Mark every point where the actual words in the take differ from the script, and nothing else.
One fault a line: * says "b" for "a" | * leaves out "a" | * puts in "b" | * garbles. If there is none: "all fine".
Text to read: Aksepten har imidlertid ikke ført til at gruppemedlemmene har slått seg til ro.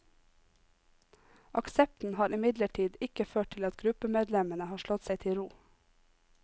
all fine